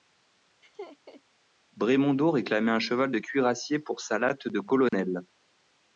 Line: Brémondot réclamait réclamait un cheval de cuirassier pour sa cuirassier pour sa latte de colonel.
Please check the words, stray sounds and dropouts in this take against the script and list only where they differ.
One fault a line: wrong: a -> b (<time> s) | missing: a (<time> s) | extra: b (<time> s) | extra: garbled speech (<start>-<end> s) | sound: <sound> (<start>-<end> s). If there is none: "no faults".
sound: laugh (0.6-1.2 s)
missing: réclamait (2.7 s)
missing: cuirassier pour sa (4.2 s)
sound: dropout (4.9-4.9 s)